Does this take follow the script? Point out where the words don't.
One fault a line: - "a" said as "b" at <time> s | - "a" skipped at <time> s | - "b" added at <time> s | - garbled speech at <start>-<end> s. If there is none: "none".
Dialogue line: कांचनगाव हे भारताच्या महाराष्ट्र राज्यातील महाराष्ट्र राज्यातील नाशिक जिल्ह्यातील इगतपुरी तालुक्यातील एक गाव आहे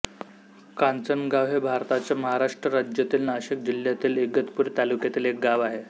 - "महाराष्ट्र राज्यातील" skipped at 3.3 s